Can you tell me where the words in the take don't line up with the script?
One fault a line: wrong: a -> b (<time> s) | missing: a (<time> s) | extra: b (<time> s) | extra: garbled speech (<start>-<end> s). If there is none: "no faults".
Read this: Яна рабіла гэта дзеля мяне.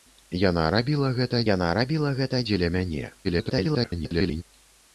extra: яна рабіла гэта (1.5 s)
extra: garbled speech (3.2-4.4 s)